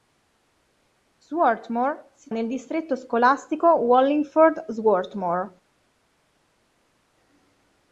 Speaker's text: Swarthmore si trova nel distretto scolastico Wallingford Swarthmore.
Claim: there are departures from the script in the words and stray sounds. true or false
true